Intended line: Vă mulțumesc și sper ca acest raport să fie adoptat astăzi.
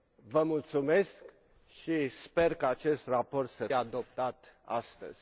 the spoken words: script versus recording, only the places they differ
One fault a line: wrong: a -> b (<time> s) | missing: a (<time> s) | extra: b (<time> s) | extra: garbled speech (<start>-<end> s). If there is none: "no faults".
missing: fie (3.7 s)